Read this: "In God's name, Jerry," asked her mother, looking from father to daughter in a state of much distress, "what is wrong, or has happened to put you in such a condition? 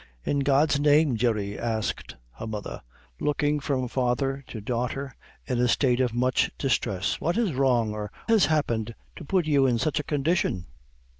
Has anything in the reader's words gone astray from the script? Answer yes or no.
no